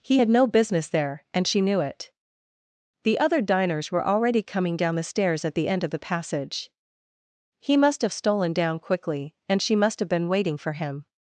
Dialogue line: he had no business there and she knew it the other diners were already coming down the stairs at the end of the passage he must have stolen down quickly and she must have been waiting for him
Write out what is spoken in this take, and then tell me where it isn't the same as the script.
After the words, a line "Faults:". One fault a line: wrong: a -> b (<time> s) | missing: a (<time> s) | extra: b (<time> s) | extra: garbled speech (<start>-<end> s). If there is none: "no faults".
he had no business there and she knew it the other diners were already coming down the stairs at the end of the passage he must have stolen down quickly and she must have been waiting for him
Faults:
no faults